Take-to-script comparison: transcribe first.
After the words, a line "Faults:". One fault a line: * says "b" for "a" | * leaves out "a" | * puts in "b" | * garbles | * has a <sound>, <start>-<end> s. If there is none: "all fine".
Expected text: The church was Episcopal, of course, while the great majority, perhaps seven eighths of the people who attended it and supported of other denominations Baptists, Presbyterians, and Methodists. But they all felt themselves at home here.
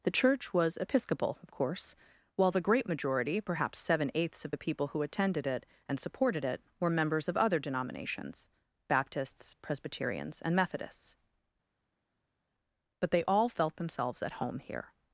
The church was Episcopal, of course, while the great majority, perhaps seven eighths of the people who attended it and supported it were members of other denominations Baptists, Presbyterians, and Methodists. But they all felt themselves at home here.
Faults:
* puts in "it were members"